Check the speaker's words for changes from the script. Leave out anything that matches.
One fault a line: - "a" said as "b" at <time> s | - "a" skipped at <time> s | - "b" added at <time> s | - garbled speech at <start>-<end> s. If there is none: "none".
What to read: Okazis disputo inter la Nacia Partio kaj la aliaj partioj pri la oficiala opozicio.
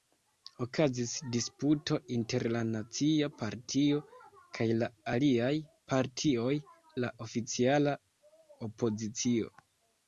- "pri" skipped at 6.5 s